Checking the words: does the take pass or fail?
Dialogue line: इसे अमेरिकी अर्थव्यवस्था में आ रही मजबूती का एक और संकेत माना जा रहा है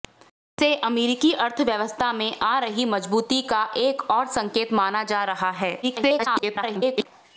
fail